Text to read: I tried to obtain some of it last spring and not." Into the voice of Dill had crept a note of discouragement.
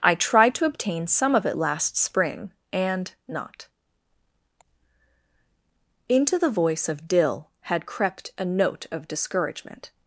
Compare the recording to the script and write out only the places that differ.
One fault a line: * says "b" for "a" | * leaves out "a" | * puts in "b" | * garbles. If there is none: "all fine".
all fine